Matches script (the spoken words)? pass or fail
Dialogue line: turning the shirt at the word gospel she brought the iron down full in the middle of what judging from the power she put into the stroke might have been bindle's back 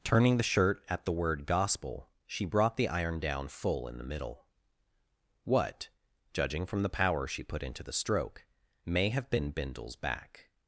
fail